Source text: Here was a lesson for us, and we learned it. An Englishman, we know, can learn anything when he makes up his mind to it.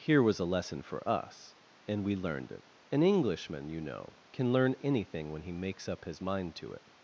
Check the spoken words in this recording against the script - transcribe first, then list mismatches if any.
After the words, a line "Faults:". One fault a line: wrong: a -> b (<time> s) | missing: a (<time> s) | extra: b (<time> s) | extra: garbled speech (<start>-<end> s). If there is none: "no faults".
Here was a lesson for us, and we learned it. An Englishman, you know, can learn anything when he makes up his mind to it.
Faults:
wrong: we -> you (3.7 s)